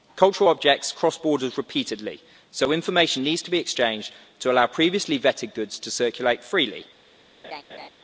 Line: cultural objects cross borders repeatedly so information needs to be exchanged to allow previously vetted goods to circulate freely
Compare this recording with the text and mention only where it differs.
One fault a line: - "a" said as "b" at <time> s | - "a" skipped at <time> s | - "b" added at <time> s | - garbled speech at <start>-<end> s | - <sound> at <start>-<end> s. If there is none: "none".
- laugh at 7.4-7.9 s